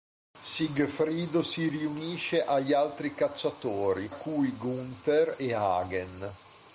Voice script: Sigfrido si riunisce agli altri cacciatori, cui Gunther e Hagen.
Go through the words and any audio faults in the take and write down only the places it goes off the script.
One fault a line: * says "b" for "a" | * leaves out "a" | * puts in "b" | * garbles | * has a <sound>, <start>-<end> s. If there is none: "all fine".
all fine